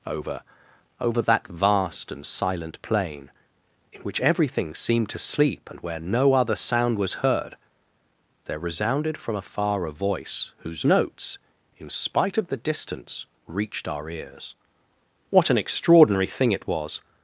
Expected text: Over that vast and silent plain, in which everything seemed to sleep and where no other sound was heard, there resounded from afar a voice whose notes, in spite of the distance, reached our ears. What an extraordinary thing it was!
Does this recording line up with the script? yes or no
no